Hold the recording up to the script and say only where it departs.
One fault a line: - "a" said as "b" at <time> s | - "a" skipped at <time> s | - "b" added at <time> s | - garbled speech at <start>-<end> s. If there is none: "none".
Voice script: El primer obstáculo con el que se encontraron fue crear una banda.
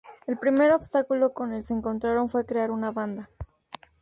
- "que" skipped at 1.7 s